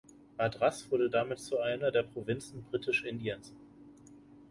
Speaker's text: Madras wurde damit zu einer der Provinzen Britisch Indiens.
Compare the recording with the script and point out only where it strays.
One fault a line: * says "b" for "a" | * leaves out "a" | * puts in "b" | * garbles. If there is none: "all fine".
all fine